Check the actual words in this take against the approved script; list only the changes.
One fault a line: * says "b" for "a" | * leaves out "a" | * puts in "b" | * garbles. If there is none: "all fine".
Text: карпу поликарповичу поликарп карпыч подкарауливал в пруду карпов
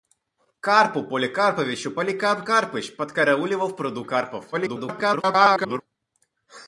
* garbles